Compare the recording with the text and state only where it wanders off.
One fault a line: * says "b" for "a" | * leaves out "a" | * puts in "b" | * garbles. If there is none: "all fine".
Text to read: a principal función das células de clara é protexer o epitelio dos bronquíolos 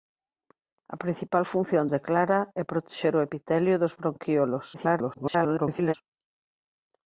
* leaves out "das células"
* garbles